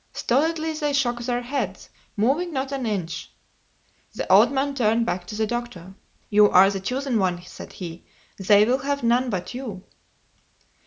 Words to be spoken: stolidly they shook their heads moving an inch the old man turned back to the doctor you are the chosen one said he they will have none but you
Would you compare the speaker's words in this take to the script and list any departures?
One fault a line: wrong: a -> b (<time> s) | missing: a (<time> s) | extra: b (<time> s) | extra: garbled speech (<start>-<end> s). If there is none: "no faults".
extra: not (2.5 s)